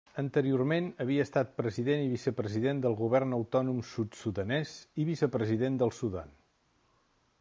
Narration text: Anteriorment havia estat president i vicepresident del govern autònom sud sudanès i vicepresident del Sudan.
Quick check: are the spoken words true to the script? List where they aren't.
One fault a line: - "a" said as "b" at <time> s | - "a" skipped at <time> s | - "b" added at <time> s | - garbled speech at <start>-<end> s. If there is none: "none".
none